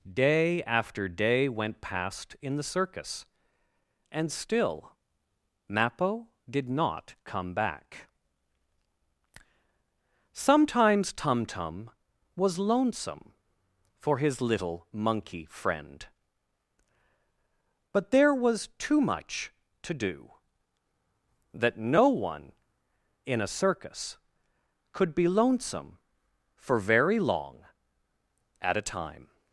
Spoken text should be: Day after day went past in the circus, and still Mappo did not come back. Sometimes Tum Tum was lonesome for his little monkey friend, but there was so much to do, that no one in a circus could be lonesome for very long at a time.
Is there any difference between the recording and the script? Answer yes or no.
yes